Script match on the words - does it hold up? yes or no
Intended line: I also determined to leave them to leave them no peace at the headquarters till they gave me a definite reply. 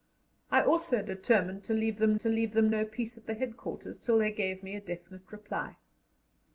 yes